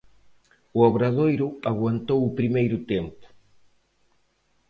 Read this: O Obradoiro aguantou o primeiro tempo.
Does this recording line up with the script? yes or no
yes